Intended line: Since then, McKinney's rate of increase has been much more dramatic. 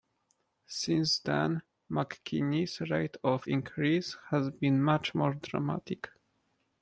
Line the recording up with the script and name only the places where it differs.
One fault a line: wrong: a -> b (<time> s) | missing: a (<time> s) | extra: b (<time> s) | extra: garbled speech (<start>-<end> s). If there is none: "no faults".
no faults